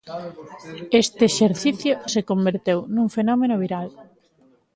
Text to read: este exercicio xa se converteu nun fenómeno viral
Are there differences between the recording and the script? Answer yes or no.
yes